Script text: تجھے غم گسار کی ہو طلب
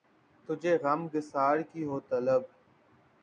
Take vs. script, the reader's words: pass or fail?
pass